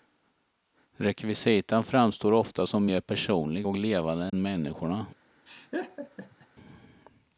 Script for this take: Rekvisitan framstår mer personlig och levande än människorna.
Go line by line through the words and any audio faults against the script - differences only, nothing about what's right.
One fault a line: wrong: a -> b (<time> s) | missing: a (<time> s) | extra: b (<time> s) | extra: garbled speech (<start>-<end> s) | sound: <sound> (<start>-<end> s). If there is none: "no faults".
extra: ofta som (2.3 s)
sound: dropout (4.3-4.3 s)
sound: laugh (5.5-6.5 s)